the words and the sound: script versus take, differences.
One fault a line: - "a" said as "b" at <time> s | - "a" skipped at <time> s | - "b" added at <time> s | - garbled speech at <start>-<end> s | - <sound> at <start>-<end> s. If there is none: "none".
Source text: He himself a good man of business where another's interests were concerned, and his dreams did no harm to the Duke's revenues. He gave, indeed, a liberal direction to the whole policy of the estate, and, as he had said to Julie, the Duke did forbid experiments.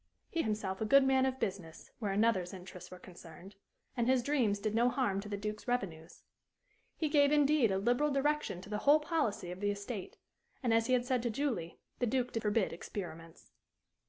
none